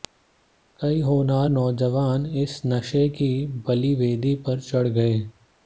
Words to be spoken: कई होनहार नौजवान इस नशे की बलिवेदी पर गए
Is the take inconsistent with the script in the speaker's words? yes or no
yes